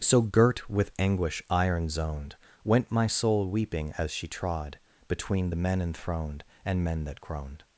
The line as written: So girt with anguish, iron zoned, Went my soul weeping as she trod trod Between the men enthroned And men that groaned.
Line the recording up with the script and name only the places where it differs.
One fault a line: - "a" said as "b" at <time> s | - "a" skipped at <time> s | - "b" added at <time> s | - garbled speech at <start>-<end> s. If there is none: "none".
- "trod" skipped at 4.8 s